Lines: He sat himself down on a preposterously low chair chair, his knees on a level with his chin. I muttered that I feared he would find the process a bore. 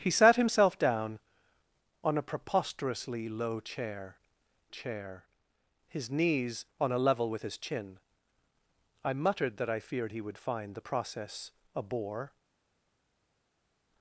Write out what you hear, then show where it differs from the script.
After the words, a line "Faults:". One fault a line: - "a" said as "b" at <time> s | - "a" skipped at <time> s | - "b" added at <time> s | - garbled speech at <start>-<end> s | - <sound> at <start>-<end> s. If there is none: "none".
He sat himself down on a preposterously low chair chair, his knees on a level with his chin. I muttered that I feared he would find the process a bore.
Faults:
none